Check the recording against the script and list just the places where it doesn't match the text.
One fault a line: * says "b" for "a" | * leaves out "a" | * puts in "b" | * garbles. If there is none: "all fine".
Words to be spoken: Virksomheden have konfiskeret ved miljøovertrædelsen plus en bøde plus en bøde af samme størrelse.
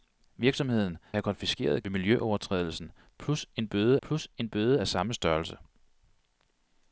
all fine